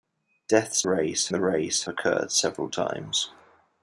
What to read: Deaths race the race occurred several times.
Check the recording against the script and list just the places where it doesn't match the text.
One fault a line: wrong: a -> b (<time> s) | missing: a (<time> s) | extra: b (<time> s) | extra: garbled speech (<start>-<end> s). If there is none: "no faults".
no faults